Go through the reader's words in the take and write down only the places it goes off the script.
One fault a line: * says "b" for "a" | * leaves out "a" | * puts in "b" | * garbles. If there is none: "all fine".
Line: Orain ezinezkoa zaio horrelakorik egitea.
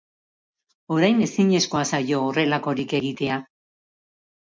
all fine